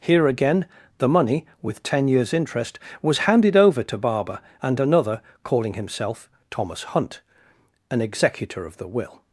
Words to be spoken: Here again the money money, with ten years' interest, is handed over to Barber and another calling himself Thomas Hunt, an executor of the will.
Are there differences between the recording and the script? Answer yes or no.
yes